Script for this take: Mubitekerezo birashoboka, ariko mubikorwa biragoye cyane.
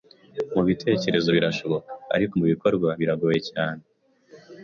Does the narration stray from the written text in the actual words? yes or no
no